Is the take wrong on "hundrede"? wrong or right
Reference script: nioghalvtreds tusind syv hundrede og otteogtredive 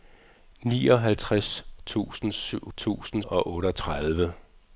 wrong